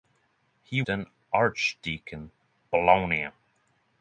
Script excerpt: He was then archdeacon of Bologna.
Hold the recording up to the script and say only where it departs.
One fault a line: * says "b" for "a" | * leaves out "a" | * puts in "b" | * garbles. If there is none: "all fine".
* leaves out "was"
* leaves out "of"